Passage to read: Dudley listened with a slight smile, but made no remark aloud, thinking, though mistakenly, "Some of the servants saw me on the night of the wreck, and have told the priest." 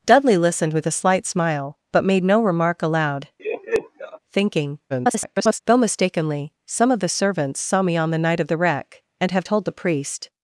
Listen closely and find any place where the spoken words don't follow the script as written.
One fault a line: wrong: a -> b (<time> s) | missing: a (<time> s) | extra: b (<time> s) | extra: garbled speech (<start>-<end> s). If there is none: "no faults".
extra: garbled speech (4.9-5.6 s)